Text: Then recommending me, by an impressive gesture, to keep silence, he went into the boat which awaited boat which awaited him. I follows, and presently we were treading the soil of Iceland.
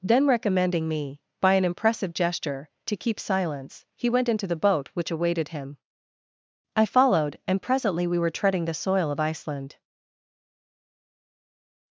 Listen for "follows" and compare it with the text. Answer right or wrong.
wrong